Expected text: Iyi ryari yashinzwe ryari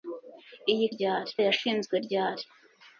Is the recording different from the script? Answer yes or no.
no